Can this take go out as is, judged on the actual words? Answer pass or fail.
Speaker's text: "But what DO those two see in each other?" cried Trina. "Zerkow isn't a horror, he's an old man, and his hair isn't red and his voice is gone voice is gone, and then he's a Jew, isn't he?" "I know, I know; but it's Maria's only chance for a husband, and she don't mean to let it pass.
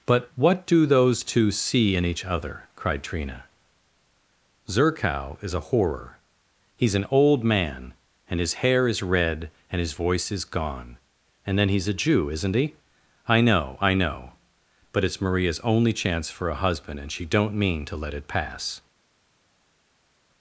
fail